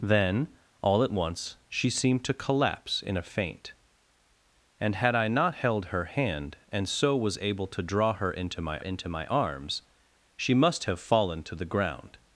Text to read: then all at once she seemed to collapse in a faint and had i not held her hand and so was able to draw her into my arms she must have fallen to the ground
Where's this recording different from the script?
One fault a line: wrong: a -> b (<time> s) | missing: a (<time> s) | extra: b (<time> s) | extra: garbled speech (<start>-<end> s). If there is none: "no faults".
extra: into my (8.8 s)